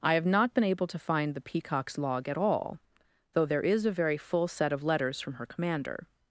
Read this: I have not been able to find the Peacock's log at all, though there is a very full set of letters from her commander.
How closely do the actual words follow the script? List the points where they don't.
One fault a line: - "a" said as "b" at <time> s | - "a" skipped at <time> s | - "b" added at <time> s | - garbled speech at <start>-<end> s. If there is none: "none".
none